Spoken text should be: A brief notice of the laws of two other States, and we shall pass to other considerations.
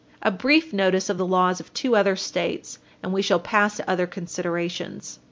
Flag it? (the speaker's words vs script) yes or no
no